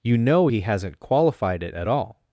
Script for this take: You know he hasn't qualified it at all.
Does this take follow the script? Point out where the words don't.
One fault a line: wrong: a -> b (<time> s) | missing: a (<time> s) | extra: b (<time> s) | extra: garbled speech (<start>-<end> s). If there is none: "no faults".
no faults